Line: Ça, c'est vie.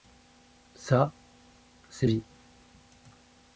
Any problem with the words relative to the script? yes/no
no